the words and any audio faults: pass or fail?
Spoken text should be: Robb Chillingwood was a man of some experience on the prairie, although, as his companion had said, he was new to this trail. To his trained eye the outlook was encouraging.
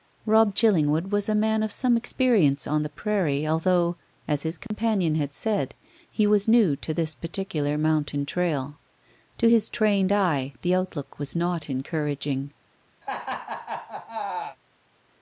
fail